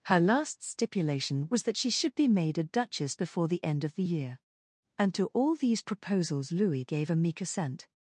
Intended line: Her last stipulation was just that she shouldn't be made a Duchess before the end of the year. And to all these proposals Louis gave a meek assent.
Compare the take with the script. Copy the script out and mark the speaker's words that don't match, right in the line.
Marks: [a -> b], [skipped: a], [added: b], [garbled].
Her last stipulation was [skipped: just] that she [shouldn't -> should] be made a Duchess before the end of the year. And to all these proposals Louis gave a meek assent.